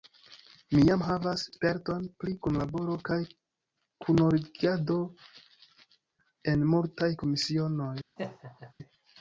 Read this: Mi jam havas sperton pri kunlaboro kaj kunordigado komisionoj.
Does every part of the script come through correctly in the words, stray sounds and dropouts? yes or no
no